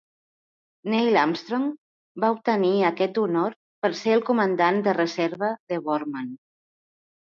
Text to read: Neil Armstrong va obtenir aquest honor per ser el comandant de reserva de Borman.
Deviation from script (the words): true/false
false